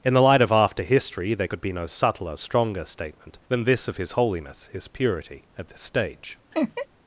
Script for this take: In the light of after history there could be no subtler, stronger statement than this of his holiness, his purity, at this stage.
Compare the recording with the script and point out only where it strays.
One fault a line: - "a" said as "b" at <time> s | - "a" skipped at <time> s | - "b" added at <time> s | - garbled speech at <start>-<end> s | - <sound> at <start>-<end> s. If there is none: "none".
- laugh at 6.5-6.9 s